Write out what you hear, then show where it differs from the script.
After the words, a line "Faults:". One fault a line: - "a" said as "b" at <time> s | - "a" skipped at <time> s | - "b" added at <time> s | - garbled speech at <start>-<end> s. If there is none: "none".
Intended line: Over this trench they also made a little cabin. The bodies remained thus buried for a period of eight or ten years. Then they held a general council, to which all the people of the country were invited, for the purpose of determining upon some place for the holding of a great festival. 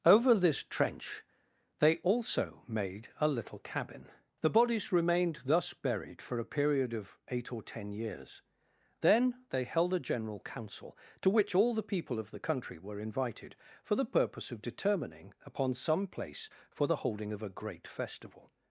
Over this trench they also made a little cabin. The bodies remained thus buried for a period of eight or ten years. Then they held a general council, to which all the people of the country were invited, for the purpose of determining upon some place for the holding of a great festival.
Faults:
none